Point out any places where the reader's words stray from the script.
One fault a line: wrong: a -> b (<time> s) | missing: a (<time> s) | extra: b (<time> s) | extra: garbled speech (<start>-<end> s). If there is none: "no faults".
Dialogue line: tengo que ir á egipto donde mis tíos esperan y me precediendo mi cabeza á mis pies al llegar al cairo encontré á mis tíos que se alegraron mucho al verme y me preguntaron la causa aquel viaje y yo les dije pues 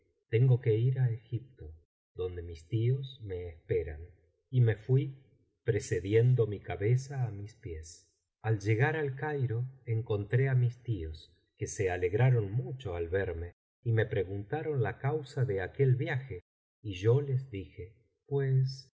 extra: me (3.2 s)
extra: fui (4.8 s)
extra: de (15.4 s)